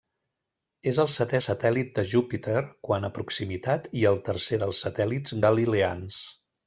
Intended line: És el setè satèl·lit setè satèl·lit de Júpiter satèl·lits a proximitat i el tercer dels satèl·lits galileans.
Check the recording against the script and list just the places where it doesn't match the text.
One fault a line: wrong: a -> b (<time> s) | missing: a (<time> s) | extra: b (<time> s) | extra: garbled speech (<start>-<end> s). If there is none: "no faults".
missing: setè satèl·lit (1.9 s)
wrong: satèl·lits -> quant (2.9 s)